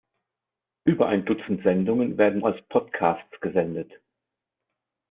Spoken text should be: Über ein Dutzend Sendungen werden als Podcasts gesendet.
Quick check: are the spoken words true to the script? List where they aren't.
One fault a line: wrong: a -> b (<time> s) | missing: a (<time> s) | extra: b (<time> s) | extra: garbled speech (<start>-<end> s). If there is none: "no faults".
no faults